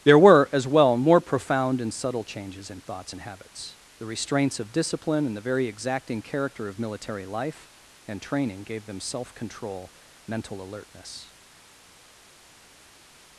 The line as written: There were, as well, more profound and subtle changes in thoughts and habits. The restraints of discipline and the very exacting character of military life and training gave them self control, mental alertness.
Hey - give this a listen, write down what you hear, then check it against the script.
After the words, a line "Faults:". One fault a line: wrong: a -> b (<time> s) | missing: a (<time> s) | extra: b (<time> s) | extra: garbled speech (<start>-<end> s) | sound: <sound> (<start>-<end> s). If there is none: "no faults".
There were, as well, more profound and subtle changes in thoughts and habits. The restraints of discipline and the very exacting character of military life and training gave them self control, mental alertness.
Faults:
no faults